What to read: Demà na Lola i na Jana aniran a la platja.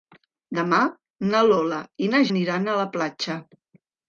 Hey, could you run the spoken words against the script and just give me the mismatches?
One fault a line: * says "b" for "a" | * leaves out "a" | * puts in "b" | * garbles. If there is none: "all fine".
* leaves out "Jana"